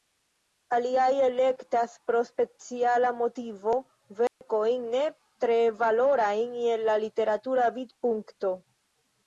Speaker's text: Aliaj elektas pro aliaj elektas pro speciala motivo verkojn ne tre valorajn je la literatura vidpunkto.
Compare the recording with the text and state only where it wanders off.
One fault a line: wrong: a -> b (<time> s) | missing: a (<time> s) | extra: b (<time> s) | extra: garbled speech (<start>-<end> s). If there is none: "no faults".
missing: aliaj elektas pro (2.2 s)